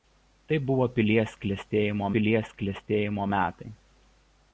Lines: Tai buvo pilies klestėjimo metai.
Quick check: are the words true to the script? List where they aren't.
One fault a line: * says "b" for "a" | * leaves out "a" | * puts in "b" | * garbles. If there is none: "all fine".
* puts in "pilies klestėjimo"